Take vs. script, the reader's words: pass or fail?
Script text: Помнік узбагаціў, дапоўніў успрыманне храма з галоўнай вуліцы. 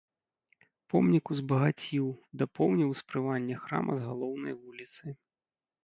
pass